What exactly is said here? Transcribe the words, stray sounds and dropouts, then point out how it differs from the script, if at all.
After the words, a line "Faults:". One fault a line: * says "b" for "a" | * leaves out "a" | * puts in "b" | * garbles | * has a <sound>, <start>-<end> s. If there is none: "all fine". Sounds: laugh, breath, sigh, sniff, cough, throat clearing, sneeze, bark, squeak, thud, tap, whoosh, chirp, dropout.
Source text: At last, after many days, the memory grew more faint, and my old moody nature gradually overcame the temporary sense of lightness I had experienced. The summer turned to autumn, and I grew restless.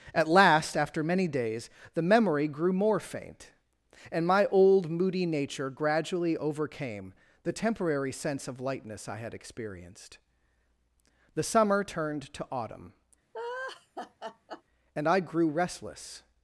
At last, after many days, the memory grew more faint, and my old moody nature gradually overcame the temporary sense of lightness I had experienced. The summer turned to autumn, and I grew restless.
Faults:
* has a laugh, 13.3-14.6 s